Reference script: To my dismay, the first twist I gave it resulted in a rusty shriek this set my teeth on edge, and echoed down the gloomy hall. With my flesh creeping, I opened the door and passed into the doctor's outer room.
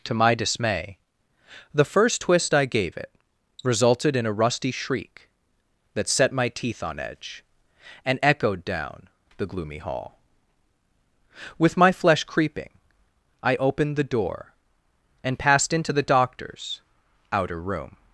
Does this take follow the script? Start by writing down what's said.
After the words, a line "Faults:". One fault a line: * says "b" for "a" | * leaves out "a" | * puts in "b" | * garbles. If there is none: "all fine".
To my dismay, the first twist I gave it resulted in a rusty shriek that set my teeth on edge, and echoed down the gloomy hall. With my flesh creeping, I opened the door and passed into the doctor's outer room.
Faults:
* says "that" for "this"